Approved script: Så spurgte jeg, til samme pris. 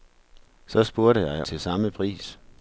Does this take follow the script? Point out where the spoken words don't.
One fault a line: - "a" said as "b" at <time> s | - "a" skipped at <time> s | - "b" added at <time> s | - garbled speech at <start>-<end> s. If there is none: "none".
none